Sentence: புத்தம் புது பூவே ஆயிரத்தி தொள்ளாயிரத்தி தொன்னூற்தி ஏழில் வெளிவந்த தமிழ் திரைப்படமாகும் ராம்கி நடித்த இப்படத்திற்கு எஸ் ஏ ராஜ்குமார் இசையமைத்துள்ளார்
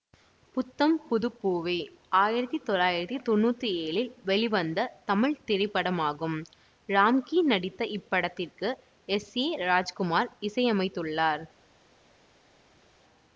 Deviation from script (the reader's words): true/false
false